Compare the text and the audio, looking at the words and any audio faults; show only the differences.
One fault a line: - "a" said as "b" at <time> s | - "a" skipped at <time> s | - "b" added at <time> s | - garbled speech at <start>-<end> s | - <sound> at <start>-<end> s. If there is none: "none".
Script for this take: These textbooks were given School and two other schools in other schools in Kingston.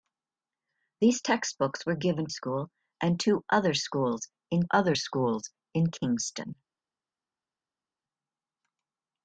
none